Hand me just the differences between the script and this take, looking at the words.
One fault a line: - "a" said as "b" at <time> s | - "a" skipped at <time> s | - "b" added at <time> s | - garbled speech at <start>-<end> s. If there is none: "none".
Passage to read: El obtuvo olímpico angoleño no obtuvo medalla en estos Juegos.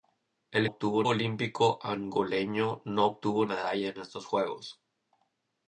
none